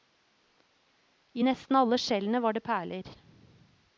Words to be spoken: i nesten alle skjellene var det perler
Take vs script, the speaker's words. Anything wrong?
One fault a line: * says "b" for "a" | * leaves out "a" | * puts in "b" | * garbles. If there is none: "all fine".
all fine